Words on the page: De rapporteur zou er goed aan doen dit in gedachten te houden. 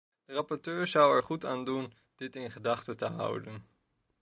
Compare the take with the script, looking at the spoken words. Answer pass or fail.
pass